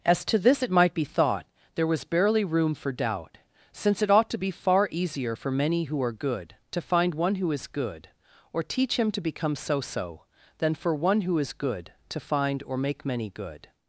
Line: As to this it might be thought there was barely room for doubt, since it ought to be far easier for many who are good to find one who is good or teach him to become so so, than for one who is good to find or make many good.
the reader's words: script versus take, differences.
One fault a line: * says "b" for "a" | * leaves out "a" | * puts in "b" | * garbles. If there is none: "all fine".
all fine